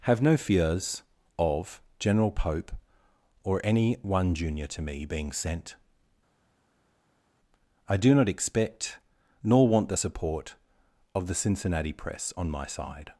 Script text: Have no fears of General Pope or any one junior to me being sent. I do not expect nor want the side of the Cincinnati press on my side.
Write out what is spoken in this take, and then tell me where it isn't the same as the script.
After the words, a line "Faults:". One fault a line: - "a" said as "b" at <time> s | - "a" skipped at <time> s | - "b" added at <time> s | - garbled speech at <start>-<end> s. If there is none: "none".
Have no fears of General Pope or any one junior to me being sent. I do not expect nor want the support of the Cincinnati press on my side.
Faults:
- "side" said as "support" at 10.0 s